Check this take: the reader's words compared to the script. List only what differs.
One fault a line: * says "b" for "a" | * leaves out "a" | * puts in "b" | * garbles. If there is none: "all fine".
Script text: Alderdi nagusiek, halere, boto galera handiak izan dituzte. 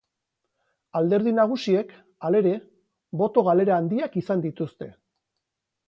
all fine